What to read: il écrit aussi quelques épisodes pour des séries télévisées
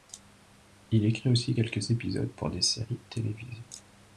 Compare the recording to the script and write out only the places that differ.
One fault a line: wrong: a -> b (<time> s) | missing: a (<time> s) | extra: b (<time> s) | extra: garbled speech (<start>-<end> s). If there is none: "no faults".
no faults